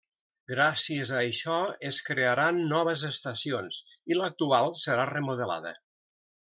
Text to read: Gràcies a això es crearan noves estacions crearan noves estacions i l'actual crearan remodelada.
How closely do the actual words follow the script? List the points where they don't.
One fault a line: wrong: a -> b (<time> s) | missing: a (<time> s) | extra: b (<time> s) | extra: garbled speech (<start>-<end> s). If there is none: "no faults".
missing: crearan noves estacions (3.8 s)
wrong: crearan -> serà (4.9 s)